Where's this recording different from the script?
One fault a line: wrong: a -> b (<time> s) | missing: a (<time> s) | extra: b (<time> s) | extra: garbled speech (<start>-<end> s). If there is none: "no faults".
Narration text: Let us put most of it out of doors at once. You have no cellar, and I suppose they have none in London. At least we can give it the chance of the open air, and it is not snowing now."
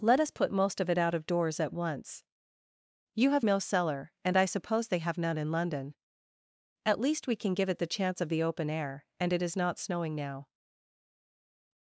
no faults